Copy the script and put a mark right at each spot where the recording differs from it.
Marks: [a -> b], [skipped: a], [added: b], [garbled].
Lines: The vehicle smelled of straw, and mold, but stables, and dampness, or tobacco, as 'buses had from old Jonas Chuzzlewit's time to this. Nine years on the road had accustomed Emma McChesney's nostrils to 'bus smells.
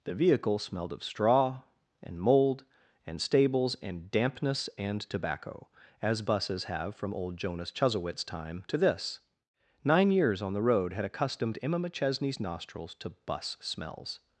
The vehicle smelled of straw, and mold, [but -> and] stables, and dampness, [or -> and] tobacco, as 'buses [had -> have] from old Jonas Chuzzlewit's time to this. Nine years on the road had accustomed Emma McChesney's nostrils to 'bus smells.